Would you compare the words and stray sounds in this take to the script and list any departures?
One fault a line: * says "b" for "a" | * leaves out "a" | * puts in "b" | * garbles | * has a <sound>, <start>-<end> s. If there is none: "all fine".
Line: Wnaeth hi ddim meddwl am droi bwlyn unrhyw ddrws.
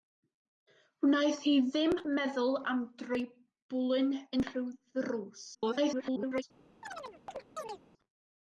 * garbles
* has a chirp, 6.8-7.8 s